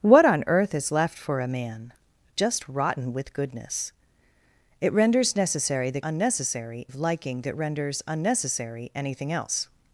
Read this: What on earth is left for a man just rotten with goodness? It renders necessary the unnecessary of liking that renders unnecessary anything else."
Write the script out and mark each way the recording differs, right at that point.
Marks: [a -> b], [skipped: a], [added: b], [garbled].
What on earth is left for a man just rotten with goodness? It renders necessary the unnecessary of liking that renders unnecessary anything else."